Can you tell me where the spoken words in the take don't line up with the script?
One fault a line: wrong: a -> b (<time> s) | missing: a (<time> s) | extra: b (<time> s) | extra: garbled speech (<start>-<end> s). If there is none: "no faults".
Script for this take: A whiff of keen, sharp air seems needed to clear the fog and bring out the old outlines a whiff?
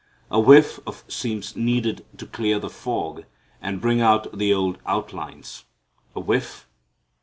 missing: keen sharp air (1.1 s)